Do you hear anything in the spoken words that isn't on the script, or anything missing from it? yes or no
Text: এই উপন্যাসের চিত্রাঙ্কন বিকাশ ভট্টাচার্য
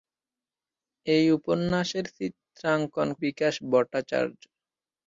no